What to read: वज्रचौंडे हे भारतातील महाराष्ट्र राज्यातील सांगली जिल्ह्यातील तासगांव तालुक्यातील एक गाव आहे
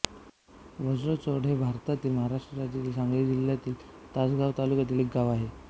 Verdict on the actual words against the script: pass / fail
pass